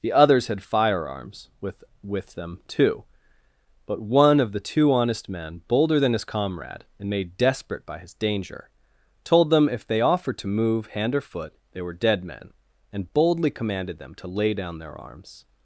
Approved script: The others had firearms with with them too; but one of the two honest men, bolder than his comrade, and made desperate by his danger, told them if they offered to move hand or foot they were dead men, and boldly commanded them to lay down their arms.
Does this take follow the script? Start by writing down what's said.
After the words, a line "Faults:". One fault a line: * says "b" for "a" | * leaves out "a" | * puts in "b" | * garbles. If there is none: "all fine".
The others had firearms with with them too; but one of the two honest men, bolder than his comrade, and made desperate by his danger, told them if they offered to move hand or foot they were dead men, and boldly commanded them to lay down their arms.
Faults:
all fine